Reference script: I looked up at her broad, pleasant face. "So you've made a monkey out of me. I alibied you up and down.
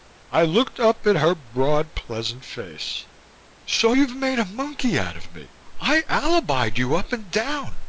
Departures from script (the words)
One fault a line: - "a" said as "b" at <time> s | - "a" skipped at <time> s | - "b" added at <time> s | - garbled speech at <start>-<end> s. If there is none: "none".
none